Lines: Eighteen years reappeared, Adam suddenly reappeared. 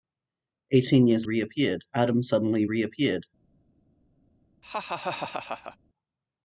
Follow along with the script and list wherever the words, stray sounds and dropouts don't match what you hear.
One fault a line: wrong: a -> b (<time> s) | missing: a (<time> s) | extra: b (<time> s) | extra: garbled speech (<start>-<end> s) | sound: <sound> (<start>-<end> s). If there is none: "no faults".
sound: laugh (4.6-5.8 s)